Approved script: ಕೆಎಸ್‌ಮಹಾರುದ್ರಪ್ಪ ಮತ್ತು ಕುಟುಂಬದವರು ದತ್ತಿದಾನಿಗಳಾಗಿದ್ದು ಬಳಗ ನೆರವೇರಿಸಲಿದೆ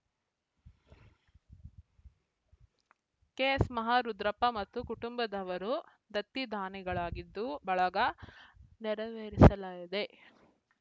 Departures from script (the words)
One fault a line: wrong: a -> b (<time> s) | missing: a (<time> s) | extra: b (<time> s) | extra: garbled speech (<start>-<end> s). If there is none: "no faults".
no faults